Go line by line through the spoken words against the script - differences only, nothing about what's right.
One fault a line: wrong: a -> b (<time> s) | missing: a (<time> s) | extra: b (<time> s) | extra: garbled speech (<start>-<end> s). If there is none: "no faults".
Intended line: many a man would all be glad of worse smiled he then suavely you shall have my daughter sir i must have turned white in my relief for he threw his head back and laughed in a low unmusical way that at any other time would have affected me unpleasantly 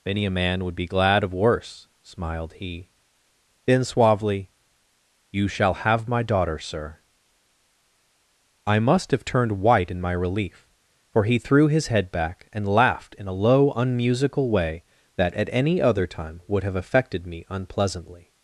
missing: all (0.8 s)